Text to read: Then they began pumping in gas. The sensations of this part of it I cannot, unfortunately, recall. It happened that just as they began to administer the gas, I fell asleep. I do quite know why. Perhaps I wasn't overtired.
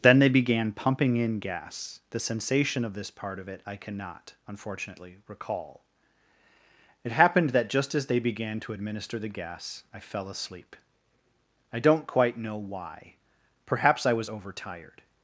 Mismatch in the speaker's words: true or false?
true